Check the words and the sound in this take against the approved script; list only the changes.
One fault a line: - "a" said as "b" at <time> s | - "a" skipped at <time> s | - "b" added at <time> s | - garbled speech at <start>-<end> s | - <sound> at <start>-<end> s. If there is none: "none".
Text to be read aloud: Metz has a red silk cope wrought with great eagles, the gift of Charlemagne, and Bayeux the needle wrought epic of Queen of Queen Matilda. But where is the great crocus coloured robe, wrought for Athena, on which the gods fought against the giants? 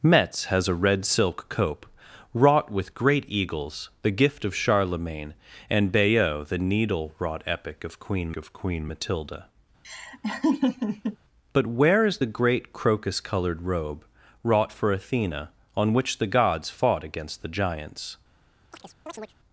- laugh at 9.8-11.2 s
- chirp at 18.7-19.3 s